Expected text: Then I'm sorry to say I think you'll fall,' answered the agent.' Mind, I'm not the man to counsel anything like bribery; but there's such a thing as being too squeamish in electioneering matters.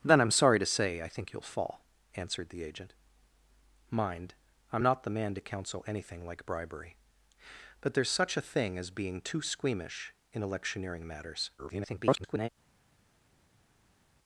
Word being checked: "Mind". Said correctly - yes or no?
yes